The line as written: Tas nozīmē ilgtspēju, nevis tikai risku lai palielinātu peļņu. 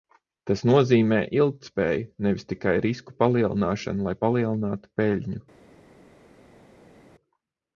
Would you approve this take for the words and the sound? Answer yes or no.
no